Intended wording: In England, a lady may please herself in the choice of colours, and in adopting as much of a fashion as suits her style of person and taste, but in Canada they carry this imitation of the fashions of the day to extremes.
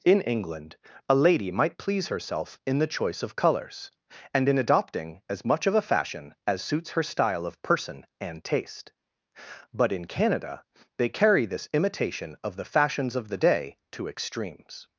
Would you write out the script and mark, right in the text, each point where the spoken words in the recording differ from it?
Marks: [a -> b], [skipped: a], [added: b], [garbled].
In England, a lady [may -> might] please herself in the choice of colours, and in adopting as much of a fashion as suits her style of person and taste, but in Canada they carry this imitation of the fashions of the day to extremes.